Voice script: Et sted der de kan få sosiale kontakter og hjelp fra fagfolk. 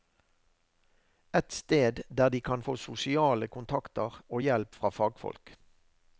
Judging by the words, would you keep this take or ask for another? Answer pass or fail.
pass